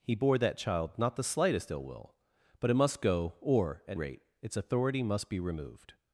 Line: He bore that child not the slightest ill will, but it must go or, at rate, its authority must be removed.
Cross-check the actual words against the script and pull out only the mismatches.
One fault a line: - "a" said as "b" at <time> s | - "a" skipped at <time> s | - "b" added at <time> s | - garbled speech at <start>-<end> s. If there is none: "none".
none